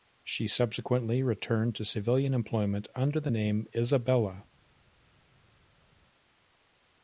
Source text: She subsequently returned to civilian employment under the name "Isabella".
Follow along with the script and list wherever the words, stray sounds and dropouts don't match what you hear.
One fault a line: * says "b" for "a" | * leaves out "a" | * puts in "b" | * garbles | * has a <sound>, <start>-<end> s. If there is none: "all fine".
all fine